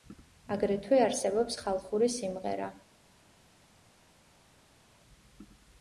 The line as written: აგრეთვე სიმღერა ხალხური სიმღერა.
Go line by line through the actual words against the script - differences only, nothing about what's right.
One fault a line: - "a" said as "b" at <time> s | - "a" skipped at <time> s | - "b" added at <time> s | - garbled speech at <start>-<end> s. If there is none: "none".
- "სიმღერა" said as "არსებობს" at 1.1 s